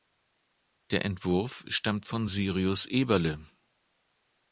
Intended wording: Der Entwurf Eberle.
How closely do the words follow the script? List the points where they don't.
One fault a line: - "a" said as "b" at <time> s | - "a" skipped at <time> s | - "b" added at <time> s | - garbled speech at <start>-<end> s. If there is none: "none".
- "stammt von Syrius" added at 1.7 s